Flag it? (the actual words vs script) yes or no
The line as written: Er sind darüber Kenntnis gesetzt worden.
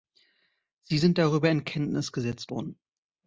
yes